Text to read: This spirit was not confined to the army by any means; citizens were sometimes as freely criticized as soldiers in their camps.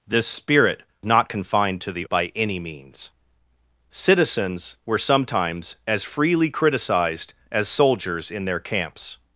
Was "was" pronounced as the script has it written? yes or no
no